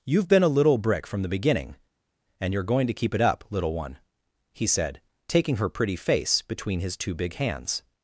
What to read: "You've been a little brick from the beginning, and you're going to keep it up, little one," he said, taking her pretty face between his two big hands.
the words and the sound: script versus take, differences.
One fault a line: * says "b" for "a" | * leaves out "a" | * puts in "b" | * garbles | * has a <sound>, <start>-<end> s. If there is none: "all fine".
all fine